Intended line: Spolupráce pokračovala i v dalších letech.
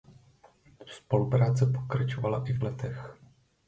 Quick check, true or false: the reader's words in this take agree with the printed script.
false